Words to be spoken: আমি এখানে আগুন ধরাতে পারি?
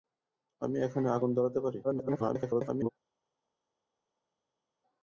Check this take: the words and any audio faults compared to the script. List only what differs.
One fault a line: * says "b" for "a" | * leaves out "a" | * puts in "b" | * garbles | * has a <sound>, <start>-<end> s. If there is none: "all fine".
* garbles